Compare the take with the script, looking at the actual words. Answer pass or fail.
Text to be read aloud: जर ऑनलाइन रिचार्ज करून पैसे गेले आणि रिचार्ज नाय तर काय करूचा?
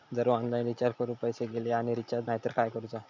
pass